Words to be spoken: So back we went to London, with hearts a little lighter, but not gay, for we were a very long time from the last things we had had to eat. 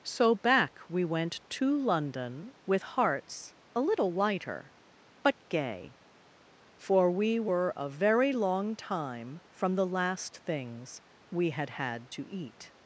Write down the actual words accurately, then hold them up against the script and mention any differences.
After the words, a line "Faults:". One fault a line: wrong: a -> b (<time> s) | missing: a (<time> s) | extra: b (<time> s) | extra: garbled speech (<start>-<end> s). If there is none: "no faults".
So back we went to London, with hearts a little lighter, but gay, for we were a very long time from the last things we had had to eat.
Faults:
missing: not (5.4 s)